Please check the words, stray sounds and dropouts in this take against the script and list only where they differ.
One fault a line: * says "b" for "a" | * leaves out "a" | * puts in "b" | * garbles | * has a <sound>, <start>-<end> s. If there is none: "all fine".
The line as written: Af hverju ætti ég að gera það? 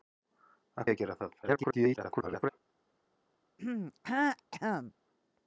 * leaves out "hverju ætti"
* garbles
* has a throat clearing, 3.6-4.9 s